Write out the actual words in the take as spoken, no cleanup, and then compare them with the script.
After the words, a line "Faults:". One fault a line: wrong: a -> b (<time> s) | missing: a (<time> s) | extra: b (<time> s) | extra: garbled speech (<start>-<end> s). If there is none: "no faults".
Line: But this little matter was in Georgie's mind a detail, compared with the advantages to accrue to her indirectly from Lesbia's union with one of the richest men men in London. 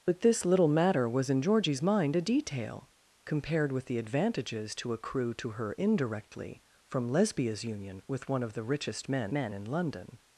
But this little matter was in Georgie's mind a detail, compared with the advantages to accrue to her indirectly from Lesbia's union with one of the richest men men in London.
Faults:
no faults